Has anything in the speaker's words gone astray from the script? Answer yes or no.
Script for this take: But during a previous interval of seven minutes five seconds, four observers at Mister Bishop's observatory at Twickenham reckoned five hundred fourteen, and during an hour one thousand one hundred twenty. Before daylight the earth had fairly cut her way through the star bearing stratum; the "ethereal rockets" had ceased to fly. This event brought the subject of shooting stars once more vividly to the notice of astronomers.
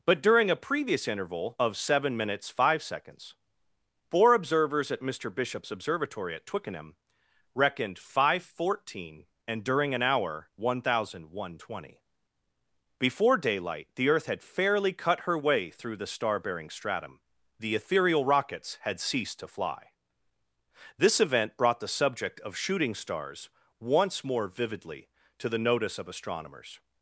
no